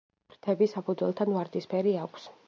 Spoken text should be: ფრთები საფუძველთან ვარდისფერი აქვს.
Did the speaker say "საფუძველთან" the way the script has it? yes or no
yes